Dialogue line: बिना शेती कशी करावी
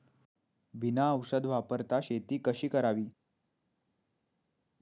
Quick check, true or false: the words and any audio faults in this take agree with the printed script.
false